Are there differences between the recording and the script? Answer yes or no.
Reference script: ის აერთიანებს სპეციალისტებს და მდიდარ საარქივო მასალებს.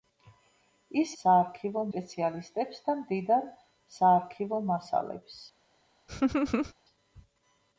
yes